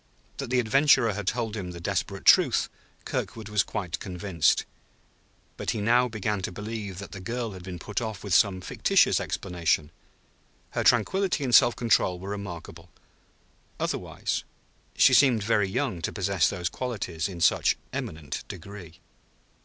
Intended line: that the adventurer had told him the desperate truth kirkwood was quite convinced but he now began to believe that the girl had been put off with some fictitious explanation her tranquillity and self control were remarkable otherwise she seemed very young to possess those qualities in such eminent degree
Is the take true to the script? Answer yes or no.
yes